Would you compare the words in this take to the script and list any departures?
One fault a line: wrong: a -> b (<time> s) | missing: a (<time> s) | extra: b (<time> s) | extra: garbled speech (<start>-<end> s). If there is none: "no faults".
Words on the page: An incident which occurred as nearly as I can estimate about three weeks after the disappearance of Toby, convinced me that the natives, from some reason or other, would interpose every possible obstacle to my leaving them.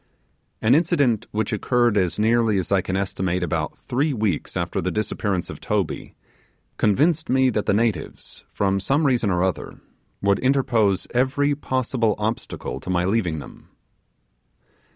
no faults